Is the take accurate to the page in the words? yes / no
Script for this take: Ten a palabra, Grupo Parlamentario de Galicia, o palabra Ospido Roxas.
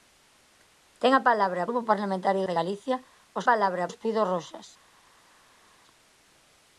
yes